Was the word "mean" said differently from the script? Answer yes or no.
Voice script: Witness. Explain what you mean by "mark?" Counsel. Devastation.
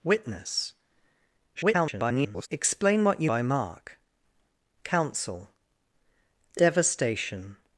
yes